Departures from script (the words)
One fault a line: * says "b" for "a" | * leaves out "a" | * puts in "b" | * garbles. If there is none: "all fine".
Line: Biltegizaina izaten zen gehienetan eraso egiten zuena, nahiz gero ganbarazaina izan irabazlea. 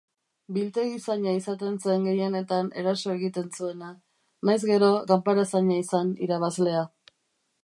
all fine